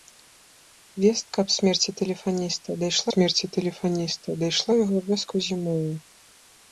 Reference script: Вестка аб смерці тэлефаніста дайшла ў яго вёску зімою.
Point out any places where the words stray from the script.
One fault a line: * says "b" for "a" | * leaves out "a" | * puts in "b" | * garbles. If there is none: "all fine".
* puts in "смерці тэлефаніста дайшла"